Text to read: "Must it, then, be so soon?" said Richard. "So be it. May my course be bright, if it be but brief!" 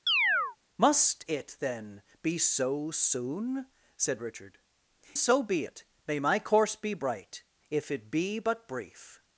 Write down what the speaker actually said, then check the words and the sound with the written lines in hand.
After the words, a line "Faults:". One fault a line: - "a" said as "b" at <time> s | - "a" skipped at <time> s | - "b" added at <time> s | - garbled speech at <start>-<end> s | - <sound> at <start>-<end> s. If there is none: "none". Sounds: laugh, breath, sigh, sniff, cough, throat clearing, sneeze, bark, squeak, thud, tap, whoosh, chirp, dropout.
"Must it, then, be so soon?" said Richard. "So be it. May my course be bright, if it be but brief!"
Faults:
- chirp at 0.1-0.6 s